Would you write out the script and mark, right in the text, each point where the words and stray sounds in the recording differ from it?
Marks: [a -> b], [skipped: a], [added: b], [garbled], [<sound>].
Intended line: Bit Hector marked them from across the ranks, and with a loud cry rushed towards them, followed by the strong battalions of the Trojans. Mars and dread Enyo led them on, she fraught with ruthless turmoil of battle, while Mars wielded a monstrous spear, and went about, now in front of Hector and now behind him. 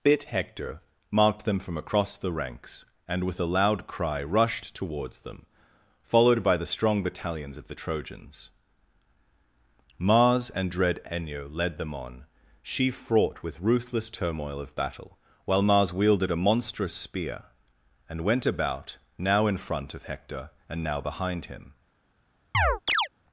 Bit Hector marked them from across the ranks, and with a loud cry rushed towards them, followed by the strong battalions of the Trojans. Mars and dread Enyo led them on, she fraught with ruthless turmoil of battle, while Mars wielded a monstrous spear, and went about, now in front of Hector and now behind him. [chirp]